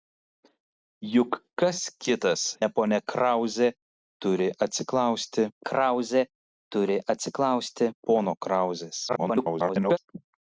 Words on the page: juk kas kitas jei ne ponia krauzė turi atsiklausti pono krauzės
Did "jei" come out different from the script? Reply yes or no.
yes